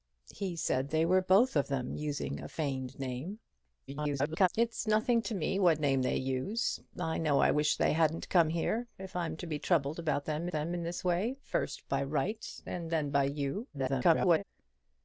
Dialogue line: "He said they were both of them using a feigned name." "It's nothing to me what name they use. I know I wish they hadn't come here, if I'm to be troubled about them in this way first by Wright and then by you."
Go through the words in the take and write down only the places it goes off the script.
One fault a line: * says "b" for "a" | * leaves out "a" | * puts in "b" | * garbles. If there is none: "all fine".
* garbles
* puts in "them"
* garbles